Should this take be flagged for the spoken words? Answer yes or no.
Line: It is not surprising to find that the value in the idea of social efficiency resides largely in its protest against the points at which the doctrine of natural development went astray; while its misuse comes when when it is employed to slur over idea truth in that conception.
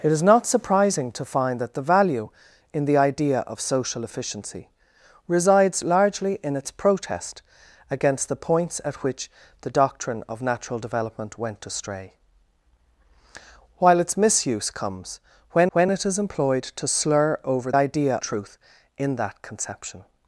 no